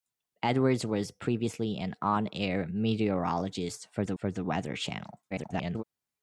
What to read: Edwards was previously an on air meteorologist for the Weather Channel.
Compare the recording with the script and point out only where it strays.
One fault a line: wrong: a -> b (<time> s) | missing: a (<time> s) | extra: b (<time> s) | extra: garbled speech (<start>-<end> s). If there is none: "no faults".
extra: for the (4.2 s)
extra: garbled speech (5.3-5.8 s)